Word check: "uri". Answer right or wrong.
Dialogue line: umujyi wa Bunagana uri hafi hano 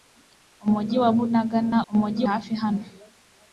wrong